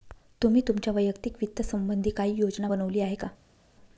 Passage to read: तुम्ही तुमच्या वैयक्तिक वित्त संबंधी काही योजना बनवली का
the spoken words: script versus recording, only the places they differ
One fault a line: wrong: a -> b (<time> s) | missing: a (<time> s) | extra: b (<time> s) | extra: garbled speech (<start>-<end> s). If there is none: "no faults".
extra: आहे (3.0 s)